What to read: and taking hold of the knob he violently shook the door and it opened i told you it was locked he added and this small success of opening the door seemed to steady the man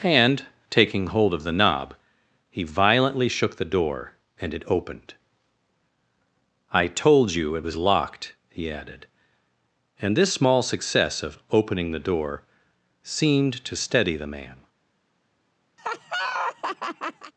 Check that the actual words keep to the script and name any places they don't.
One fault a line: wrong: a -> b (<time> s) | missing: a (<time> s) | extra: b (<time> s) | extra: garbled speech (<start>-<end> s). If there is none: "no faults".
no faults